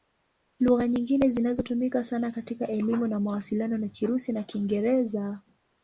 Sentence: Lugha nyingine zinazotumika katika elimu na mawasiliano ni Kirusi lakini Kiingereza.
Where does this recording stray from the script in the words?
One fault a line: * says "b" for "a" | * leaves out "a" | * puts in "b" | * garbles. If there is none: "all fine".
* puts in "sana"
* says "na" for "lakini"